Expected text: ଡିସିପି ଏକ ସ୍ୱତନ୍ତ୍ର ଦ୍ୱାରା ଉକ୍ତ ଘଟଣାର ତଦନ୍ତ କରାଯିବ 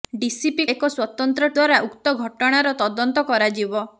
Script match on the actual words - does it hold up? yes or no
yes